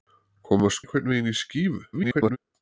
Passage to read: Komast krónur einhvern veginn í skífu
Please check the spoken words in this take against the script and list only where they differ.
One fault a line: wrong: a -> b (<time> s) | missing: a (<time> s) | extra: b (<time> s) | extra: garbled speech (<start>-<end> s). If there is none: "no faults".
missing: krónur (0.8 s)
extra: garbled speech (1.9-2.4 s)